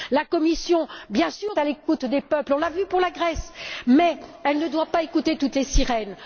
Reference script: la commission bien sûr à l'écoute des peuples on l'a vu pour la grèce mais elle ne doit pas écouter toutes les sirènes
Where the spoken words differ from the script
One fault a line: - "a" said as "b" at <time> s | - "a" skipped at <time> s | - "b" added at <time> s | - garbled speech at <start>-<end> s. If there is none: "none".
none